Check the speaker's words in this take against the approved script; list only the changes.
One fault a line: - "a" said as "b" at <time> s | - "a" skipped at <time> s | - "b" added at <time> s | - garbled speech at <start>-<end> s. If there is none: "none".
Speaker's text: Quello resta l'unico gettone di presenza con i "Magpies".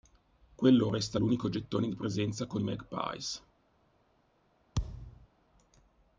none